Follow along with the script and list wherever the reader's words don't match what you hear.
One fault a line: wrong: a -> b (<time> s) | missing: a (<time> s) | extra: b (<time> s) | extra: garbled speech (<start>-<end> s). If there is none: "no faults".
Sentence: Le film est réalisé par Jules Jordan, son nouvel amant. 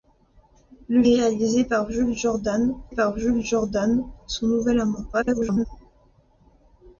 missing: film (1.0 s)
extra: par Jules Jordan (2.9 s)
extra: garbled speech (5.1-5.7 s)